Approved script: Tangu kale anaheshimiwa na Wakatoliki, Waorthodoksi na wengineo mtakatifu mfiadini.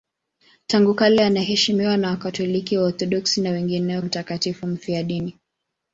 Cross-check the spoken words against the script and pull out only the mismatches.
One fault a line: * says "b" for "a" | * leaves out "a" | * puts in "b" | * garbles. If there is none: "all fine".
all fine